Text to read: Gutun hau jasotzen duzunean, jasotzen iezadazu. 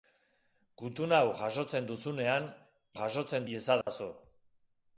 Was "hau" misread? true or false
false